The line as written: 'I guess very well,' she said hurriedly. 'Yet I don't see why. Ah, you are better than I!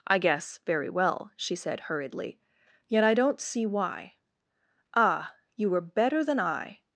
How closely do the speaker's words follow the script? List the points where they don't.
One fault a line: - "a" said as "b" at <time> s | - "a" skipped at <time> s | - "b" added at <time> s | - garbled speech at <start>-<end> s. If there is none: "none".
- "are" said as "were" at 5.7 s